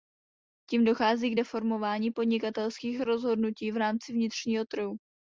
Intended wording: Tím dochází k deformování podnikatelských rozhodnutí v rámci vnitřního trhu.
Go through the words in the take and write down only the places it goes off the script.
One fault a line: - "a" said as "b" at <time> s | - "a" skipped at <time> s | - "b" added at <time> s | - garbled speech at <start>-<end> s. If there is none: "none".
none